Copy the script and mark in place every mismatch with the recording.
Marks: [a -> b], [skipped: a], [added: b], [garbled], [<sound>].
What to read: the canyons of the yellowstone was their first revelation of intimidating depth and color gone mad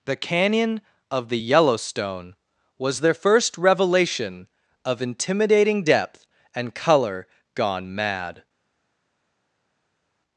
the [canyons -> canyon] of the yellowstone was their first revelation of intimidating depth and color gone mad